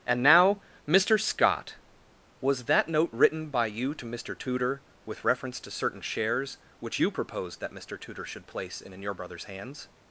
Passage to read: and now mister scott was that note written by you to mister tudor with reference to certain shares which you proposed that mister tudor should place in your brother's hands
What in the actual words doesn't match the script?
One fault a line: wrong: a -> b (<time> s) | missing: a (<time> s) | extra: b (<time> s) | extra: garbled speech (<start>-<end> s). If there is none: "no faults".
extra: in (8.9 s)